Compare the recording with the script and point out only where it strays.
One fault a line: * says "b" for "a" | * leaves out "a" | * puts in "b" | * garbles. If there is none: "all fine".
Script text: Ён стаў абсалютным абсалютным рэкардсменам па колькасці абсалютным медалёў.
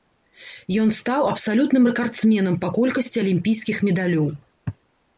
* leaves out "абсалютным"
* says "алімпійскіх" for "абсалютным"